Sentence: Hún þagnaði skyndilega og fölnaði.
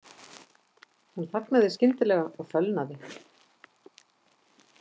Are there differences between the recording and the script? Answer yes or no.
no